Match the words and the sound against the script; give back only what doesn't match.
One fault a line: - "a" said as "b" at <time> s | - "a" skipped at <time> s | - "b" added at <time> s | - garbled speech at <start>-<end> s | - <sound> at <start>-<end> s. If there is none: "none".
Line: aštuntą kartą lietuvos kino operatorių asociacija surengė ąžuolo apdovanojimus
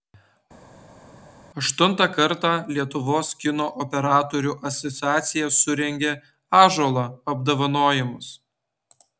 none